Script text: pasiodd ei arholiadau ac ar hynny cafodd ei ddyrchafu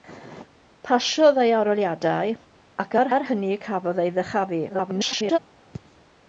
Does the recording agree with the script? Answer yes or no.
no